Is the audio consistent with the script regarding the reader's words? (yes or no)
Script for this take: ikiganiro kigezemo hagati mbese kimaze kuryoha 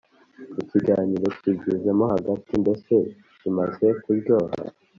yes